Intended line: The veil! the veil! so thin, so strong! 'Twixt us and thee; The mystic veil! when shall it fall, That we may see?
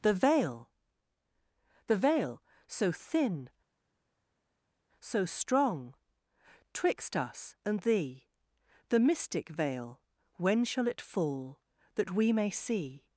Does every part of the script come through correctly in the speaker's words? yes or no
yes